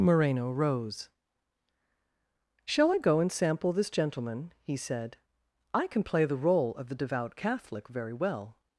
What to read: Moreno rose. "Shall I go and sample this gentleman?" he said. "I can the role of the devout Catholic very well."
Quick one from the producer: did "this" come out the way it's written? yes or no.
yes